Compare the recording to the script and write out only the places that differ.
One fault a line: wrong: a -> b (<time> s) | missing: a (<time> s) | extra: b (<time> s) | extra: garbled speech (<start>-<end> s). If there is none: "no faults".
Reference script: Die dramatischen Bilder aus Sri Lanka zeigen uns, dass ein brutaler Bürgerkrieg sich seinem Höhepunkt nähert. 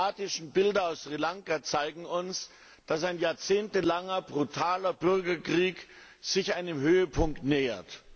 extra: jahrzehntelanger (3.2 s)